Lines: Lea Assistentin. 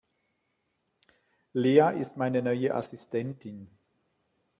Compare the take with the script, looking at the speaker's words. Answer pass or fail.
fail